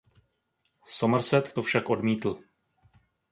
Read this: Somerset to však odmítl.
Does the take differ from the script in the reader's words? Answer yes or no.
no